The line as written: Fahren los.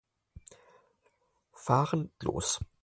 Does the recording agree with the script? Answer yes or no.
yes